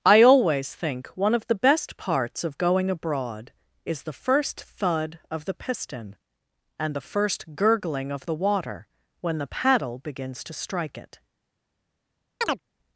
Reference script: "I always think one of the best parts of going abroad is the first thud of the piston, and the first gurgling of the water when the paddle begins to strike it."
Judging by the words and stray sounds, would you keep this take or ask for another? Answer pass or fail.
fail